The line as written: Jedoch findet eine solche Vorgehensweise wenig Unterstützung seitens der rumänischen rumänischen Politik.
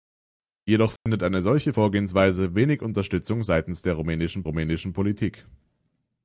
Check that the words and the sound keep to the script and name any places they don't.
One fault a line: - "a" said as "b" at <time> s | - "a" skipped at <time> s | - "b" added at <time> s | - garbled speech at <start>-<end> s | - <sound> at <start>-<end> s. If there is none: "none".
- dropout at 1.0-1.1 s